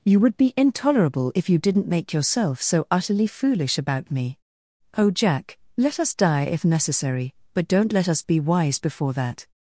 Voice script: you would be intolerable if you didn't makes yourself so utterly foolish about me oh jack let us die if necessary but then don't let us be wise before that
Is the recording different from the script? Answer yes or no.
yes